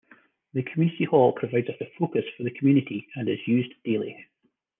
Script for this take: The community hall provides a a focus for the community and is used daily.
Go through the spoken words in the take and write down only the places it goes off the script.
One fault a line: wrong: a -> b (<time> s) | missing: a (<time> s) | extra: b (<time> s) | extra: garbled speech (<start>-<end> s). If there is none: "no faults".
no faults